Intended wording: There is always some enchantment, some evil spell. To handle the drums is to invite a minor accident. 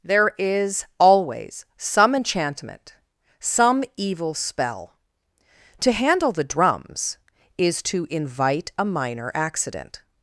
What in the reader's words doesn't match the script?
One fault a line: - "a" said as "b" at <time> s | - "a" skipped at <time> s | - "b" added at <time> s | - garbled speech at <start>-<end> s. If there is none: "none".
none